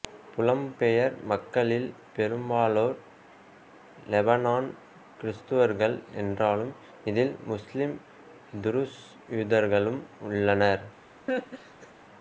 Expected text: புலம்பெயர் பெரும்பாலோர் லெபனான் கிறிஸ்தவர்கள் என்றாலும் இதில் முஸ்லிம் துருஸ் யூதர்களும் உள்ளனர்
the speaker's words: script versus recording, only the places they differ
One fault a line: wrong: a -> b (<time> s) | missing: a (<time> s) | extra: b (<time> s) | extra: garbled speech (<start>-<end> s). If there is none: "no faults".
extra: மக்களில் (1.3 s)